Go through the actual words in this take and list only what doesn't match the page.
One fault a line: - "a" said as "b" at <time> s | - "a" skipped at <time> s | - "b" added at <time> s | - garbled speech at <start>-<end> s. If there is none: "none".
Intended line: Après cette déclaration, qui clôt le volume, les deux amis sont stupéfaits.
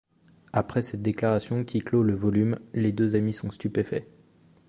none